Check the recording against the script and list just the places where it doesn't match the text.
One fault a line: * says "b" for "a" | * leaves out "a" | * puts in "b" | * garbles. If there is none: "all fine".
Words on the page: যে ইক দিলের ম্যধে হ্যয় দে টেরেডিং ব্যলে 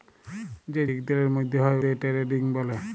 all fine